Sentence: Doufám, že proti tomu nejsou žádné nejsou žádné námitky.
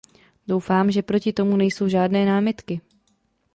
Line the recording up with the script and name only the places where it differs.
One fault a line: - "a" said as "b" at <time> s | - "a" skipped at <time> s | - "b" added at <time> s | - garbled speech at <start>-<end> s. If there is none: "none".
- "nejsou žádné" skipped at 2.2 s